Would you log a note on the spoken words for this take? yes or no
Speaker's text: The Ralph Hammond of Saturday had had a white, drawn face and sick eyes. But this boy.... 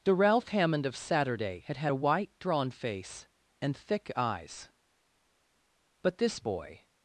yes